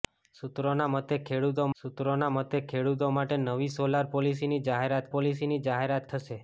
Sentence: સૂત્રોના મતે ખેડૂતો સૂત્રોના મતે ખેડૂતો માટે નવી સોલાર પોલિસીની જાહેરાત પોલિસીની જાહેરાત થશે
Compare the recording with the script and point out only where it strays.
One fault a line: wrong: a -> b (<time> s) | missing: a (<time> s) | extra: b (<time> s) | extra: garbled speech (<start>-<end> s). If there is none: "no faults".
no faults